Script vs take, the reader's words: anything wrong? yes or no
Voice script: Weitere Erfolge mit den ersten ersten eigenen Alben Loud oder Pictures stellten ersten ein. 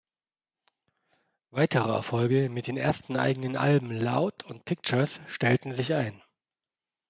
yes